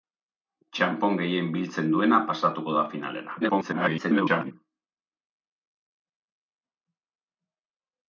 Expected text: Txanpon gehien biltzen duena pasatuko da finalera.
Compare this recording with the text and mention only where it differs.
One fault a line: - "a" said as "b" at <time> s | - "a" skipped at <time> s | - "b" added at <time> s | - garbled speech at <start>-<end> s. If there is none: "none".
- garbled speech at 3.4-4.5 s